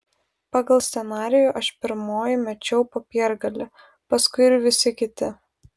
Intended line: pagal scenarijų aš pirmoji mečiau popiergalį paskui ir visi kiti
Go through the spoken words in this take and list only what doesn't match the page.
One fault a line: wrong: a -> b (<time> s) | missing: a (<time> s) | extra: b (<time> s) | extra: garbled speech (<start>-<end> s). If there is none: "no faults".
no faults